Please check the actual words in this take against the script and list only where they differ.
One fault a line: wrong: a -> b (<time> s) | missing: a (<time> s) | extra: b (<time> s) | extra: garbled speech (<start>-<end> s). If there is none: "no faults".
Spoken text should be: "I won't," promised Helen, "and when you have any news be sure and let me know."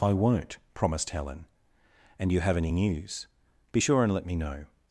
missing: when (2.3 s)